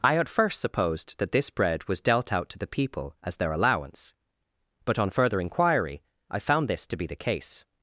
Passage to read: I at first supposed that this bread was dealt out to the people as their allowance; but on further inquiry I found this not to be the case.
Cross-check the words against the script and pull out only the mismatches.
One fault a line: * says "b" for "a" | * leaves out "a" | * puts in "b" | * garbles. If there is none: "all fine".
* leaves out "not"